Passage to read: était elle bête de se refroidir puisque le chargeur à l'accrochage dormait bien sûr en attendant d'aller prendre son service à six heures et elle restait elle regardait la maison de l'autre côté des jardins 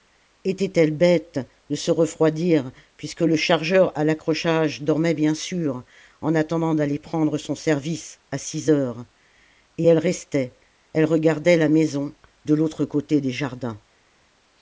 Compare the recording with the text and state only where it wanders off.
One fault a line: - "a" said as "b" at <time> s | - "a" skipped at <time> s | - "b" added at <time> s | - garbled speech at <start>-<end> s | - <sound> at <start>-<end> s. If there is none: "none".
none